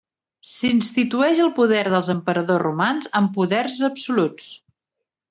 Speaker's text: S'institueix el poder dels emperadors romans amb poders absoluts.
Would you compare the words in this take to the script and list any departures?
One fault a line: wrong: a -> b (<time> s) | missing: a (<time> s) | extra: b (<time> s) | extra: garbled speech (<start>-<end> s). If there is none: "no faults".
no faults